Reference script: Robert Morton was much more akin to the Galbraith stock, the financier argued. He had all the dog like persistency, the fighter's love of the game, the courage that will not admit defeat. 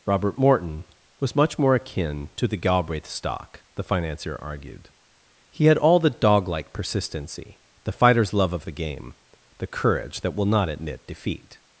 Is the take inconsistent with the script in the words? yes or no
no